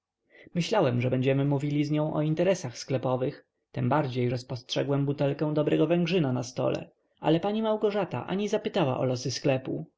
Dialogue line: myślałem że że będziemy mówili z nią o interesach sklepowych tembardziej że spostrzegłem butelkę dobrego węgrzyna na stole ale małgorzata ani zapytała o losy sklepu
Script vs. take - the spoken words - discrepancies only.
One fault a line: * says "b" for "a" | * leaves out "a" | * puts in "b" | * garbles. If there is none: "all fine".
* leaves out "że"
* puts in "pani"